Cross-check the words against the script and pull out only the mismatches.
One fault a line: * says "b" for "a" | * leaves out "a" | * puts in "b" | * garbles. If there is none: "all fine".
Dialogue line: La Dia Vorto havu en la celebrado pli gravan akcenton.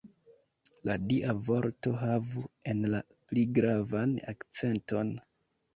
* leaves out "celebrado"